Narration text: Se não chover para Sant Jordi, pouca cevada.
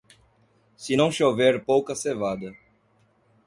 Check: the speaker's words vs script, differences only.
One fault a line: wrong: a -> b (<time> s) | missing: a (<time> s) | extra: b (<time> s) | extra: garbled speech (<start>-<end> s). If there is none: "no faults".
missing: para Sant Jordi (1.6 s)